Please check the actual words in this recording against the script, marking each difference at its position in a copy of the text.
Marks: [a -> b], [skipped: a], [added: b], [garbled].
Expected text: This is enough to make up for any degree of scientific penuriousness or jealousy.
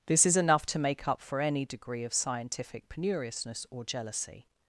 This is enough to make up for any degree of scientific penuriousness or jealousy.